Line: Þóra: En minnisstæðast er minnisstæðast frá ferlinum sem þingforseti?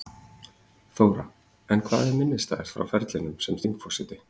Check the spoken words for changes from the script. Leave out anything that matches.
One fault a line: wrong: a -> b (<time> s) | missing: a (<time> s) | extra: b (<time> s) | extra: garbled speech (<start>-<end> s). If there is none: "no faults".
wrong: minnisstæðast -> hvað (1.9 s)